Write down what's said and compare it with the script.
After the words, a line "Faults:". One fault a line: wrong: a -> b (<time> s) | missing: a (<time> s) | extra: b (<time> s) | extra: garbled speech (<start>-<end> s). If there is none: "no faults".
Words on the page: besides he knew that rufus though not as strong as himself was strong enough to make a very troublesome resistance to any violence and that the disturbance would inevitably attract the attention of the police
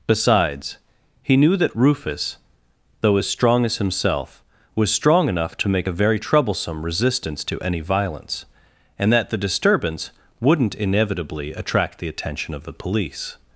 besides he knew that rufus though as strong as himself was strong enough to make a very troublesome resistance to any violence and that the disturbance wouldn't inevitably attract the attention of the police
Faults:
missing: not (3.2 s)
wrong: would -> wouldn't (10.4 s)